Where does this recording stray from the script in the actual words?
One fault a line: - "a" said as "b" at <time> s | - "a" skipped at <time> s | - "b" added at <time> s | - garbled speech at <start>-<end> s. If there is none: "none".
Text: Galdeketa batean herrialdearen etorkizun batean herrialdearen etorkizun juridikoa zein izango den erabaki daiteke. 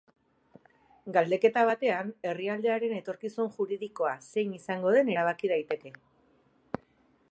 - "batean herrialdearen etorkizun" skipped at 3.5 s